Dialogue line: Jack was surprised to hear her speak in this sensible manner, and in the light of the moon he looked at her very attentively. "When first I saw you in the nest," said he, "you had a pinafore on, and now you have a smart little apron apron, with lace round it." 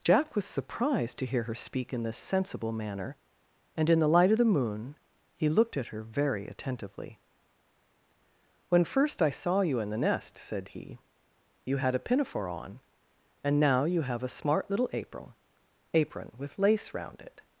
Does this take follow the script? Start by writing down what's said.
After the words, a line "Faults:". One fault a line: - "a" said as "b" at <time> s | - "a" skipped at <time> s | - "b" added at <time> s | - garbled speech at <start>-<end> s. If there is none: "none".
Jack was surprised to hear her speak in this sensible manner, and in the light of the moon he looked at her very attentively. "When first I saw you in the nest," said he, "you had a pinafore on, and now you have a smart little apron apron, with lace round it."
Faults:
none